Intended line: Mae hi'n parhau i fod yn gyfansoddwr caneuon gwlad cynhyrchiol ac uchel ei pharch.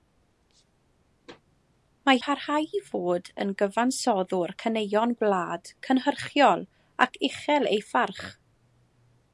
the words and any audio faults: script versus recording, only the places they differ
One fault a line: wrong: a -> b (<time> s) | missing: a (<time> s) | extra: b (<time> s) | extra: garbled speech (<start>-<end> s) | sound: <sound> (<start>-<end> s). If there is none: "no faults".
missing: hi'n (2.2 s)